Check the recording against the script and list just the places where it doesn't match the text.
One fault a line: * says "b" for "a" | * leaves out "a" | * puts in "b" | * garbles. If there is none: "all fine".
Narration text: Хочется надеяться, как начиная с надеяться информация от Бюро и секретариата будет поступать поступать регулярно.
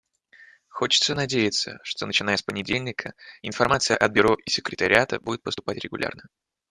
* says "что" for "как"
* says "понедельника" for "надеяться"
* leaves out "поступать"